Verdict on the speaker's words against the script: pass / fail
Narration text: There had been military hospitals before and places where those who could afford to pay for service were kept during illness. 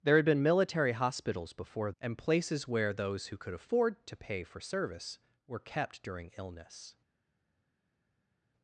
pass